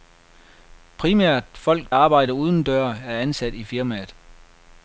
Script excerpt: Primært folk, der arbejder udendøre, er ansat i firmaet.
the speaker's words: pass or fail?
fail